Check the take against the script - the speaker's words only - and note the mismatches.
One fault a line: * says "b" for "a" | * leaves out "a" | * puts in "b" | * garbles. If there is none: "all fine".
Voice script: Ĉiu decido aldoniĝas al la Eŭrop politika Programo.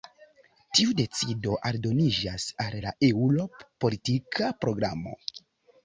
* says "Tiu" for "Ĉiu"